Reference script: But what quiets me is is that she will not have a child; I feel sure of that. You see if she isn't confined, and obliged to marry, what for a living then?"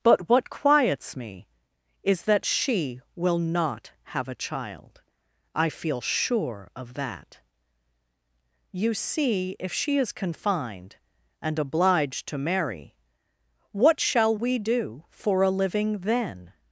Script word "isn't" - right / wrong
wrong